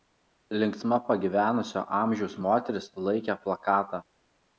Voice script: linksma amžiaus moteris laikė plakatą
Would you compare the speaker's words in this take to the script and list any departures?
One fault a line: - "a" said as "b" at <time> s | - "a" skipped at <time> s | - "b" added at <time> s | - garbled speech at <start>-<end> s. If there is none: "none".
- "pagyvenusio" added at 1.1 s